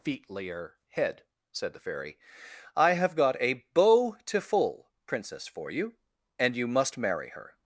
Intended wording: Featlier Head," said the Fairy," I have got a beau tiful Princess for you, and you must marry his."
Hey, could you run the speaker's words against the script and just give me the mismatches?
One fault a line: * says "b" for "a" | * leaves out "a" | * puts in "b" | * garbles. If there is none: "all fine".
* says "her" for "his"